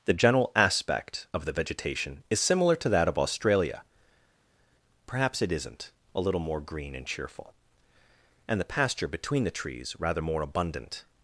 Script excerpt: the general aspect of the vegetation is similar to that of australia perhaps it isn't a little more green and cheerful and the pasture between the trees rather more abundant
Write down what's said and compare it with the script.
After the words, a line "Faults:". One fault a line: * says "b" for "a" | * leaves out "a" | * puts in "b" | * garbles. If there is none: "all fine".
the general aspect of the vegetation is similar to that of australia perhaps it isn't a little more green and cheerful and the pasture between the trees rather more abundant
Faults:
all fine